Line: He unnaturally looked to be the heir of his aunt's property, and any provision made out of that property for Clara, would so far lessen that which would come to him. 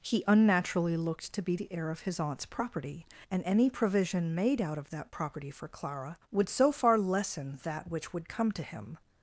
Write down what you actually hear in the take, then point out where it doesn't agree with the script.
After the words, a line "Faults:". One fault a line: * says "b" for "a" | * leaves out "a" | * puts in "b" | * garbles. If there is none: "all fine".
He unnaturally looked to be the heir of his aunt's property, and any provision made out of that property for Clara, would so far lessen that which would come to him.
Faults:
all fine